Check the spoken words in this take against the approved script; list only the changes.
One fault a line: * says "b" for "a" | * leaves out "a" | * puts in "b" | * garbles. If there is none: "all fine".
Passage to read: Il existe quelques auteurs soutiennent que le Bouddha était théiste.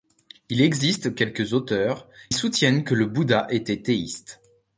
all fine